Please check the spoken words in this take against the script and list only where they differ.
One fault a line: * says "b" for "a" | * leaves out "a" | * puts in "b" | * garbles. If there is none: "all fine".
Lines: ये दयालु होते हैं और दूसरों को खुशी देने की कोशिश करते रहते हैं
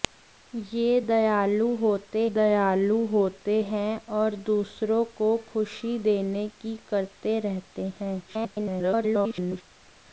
* puts in "दयालु होते"
* leaves out "कोशिश"
* garbles